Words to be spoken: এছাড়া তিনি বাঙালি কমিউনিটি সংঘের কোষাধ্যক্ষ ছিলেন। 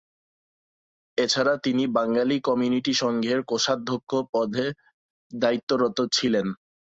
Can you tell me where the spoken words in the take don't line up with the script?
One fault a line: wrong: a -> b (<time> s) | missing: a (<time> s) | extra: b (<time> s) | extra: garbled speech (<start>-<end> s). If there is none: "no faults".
extra: পদে দায়িত্বরত (4.3 s)